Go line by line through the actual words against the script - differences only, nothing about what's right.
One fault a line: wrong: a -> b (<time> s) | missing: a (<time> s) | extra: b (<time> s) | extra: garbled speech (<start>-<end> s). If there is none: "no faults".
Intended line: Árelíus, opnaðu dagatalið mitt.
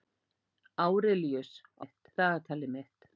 wrong: opnaðu -> mitt (1.8 s)